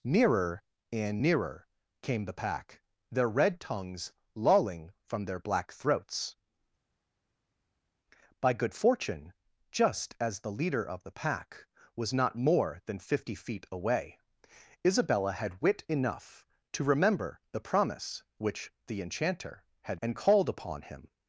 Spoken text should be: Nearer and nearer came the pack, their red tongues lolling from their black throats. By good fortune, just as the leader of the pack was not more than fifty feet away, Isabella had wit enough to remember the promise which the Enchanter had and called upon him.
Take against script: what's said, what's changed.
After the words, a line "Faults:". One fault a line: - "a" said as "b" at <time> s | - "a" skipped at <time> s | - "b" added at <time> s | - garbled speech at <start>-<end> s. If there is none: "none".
Nearer and nearer came the pack, their red tongues lolling from their black throats. By good fortune, just as the leader of the pack was not more than fifty feet away, Isabella had wit enough to remember the promise which the Enchanter had and called upon him.
Faults:
none